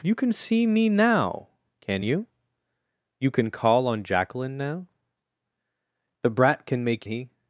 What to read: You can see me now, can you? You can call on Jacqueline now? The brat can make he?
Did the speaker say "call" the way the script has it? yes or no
yes